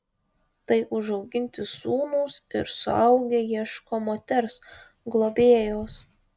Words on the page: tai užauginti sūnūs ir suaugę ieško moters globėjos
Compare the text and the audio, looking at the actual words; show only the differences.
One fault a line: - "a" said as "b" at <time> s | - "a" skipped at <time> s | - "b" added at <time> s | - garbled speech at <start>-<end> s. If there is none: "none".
none